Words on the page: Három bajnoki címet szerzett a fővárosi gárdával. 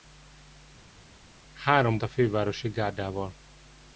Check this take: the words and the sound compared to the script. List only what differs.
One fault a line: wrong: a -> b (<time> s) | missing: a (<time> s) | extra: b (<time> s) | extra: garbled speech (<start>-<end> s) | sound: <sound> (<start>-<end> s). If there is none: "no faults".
missing: bajnoki címet szerzett (2.0 s)